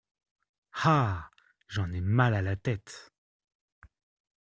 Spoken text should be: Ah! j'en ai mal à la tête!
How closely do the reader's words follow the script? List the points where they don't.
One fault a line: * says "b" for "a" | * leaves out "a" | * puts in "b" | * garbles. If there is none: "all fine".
all fine